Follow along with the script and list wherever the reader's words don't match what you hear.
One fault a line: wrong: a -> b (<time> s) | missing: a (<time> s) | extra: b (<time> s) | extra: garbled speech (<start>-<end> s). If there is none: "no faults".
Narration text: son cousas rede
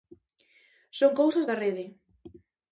extra: da (1.5 s)